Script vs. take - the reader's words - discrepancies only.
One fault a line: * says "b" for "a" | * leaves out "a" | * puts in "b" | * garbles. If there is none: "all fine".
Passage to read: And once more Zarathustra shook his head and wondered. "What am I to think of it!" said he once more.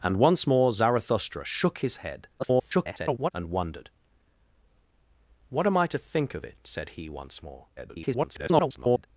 * garbles
* garbles